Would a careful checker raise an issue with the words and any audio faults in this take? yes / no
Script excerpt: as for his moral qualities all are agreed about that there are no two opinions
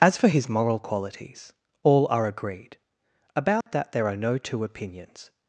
yes